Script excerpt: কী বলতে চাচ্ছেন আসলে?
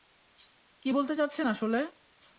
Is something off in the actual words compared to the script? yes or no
no